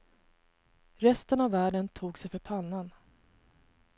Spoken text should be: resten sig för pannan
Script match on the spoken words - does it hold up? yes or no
no